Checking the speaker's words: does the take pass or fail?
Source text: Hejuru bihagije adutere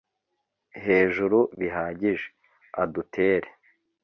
pass